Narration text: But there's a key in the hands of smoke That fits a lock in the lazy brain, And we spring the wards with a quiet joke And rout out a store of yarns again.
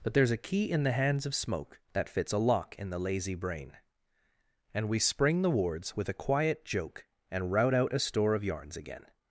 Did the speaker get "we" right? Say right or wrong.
right